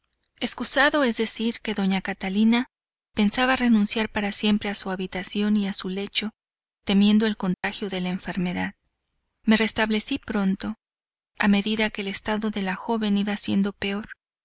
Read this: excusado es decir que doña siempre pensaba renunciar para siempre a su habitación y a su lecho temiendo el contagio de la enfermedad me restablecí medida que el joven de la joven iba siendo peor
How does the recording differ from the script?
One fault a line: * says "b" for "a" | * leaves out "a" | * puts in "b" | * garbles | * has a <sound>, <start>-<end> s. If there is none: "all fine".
* says "catalina" for "siempre"
* has a dropout, 7.5-7.6 s
* puts in "pronto a"
* says "estado" for "joven"